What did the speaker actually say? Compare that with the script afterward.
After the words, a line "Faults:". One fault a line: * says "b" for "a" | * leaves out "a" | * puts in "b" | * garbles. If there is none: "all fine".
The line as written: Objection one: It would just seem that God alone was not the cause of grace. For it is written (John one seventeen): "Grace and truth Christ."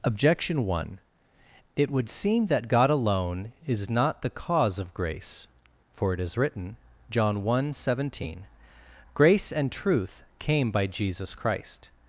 Objection one: It would seem that God alone is not the cause of grace. For it is written (John one seventeen): "Grace and truth came by Jesus Christ."
Faults:
* leaves out "just"
* says "is" for "was"
* puts in "came by Jesus"